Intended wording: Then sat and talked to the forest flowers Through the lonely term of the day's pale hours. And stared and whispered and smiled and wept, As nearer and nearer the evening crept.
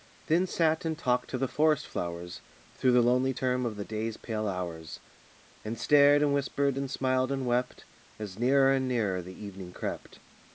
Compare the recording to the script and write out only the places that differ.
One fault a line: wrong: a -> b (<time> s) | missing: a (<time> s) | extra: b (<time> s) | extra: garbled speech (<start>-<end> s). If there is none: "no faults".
no faults